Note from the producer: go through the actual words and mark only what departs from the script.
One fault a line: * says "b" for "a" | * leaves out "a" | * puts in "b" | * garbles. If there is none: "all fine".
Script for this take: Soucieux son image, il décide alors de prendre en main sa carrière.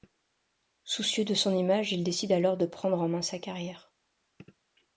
* puts in "de"